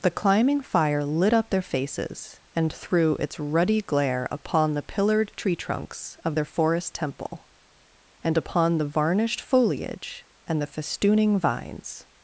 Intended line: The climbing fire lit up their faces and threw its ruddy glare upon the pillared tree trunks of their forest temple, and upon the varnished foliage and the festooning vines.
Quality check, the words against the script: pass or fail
pass